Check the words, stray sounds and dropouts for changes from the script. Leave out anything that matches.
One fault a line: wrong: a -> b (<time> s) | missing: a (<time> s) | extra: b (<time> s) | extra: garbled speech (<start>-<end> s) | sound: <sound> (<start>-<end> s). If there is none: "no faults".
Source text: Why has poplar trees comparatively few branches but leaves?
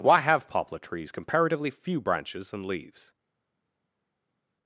wrong: has -> have (0.2 s)
wrong: but -> and (2.5 s)